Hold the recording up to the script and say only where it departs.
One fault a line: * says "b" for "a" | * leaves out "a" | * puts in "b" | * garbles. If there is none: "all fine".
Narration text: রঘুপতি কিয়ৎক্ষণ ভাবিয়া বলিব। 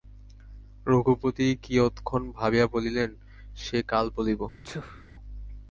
* puts in "বলিলেন সে কাল"